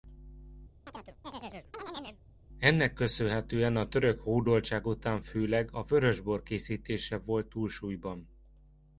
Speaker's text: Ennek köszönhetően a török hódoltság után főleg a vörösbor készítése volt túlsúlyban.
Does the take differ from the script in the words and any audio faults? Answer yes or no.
yes